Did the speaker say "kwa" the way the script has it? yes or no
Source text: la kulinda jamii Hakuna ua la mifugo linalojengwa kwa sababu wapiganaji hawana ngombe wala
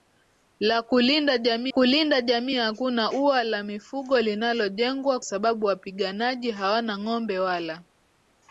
no